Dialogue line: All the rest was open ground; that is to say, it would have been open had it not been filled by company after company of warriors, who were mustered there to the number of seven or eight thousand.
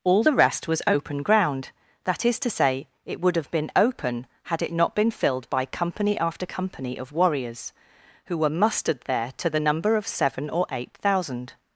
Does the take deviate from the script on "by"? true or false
false